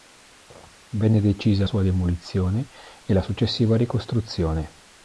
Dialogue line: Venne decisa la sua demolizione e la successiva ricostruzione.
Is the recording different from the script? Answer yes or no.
yes